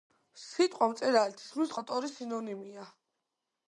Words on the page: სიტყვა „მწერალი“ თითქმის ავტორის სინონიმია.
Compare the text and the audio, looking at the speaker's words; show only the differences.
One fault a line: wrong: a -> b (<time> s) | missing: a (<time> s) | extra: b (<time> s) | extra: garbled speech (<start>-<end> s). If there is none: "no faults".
no faults